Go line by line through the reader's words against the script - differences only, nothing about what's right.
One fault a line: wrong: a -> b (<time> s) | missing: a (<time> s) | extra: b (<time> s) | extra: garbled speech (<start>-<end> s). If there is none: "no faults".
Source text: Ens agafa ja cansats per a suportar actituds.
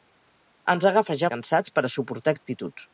no faults